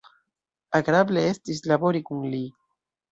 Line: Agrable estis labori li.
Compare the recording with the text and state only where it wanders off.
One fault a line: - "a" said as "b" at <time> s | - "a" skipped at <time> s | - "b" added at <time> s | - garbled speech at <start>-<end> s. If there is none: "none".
- "kun" added at 2.1 s